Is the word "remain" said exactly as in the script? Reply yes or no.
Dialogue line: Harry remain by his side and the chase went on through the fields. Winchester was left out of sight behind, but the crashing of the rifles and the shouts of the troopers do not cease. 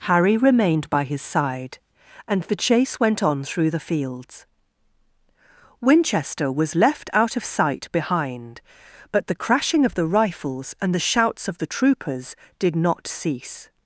no